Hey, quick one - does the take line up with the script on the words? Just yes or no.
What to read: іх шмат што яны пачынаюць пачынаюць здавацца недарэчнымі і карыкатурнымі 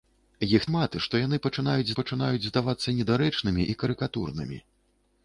yes